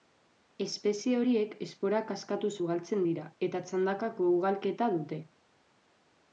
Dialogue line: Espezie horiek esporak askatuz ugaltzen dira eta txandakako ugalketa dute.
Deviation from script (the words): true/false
false